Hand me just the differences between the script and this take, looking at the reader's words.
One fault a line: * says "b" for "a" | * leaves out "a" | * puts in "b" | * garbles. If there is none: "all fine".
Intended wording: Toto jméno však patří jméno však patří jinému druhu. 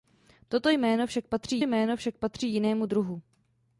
all fine